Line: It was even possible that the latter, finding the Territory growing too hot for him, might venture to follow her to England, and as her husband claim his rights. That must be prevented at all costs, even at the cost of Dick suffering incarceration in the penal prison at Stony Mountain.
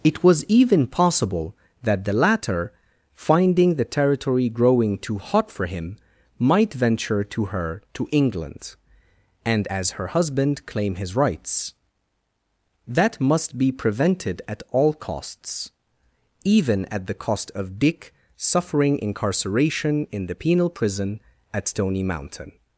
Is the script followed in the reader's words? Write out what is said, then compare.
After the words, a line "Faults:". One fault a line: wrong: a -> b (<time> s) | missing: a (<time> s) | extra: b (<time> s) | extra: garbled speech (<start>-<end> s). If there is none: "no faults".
It was even possible that the latter, finding the Territory growing too hot for him, might venture to her to England, and as her husband claim his rights. That must be prevented at all costs, even at the cost of Dick suffering incarceration in the penal prison at Stony Mountain.
Faults:
missing: follow (7.5 s)